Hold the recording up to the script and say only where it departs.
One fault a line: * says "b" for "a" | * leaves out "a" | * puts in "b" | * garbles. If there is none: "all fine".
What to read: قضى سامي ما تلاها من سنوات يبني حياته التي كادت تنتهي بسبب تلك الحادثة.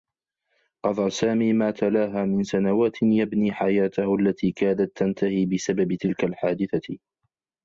all fine